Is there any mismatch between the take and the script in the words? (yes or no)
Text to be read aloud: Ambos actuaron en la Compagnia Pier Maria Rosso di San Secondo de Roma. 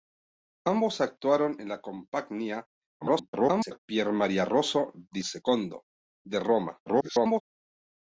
yes